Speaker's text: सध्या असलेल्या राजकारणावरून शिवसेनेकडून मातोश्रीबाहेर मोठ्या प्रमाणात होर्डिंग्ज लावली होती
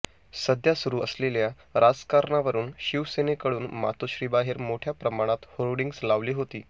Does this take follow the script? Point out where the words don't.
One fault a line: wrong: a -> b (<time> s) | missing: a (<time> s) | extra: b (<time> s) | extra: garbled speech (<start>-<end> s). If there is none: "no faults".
extra: सुरू (0.8 s)